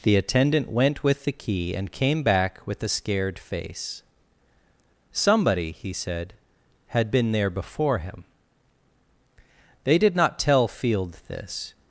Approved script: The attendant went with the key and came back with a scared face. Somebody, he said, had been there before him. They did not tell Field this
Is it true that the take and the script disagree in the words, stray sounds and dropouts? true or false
false